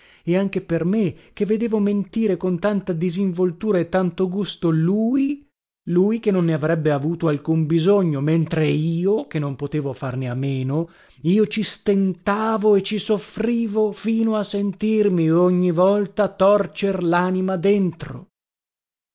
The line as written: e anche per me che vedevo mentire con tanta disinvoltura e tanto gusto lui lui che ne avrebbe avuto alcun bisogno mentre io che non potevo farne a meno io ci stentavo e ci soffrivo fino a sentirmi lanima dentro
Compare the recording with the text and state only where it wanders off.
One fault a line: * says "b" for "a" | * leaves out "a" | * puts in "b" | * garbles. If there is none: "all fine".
* puts in "non"
* puts in "ogni volta torcer"